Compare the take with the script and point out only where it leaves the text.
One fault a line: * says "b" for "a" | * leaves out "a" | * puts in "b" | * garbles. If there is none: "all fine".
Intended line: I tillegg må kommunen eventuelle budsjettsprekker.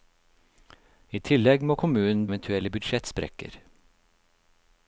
all fine